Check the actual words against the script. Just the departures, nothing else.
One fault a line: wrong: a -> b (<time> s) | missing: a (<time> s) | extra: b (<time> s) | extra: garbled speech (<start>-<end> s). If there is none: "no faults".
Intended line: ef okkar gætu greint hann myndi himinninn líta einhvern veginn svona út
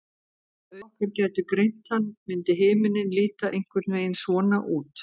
no faults